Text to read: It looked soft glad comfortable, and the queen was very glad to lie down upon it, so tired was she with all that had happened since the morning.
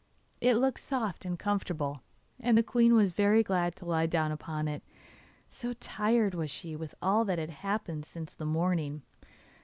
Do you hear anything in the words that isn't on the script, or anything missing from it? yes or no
yes